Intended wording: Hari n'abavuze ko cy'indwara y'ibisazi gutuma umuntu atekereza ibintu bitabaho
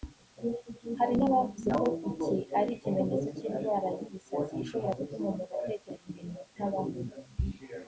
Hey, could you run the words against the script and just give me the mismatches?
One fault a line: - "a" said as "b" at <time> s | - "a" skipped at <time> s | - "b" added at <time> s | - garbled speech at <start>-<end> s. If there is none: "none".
- "iki ari ikimenyetso" added at 2.1 s
- "ishobora" added at 4.6 s